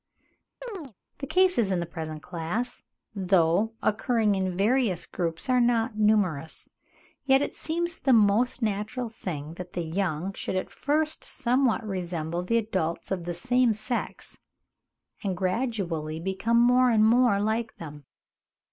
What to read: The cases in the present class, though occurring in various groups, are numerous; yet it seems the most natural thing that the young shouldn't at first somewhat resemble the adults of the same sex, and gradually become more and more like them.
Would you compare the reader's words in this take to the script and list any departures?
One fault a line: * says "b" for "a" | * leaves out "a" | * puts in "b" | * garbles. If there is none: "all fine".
* puts in "not"
* says "should" for "shouldn't"